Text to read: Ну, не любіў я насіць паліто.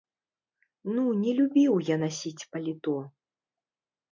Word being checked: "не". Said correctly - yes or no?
yes